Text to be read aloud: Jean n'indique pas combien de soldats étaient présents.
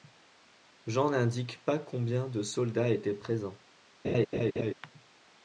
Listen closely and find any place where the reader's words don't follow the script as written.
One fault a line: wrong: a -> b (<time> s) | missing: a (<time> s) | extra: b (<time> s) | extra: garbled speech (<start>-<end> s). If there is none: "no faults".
no faults